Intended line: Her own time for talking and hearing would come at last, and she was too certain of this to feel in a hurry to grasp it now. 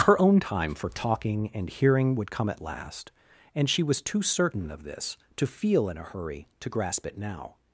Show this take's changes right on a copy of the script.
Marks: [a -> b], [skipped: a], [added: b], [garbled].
Her own time for talking and hearing would come at last, and she was too certain of this to feel in a hurry to grasp it now.